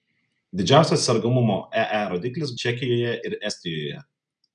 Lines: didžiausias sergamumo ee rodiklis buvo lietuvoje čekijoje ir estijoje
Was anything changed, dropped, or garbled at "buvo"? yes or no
yes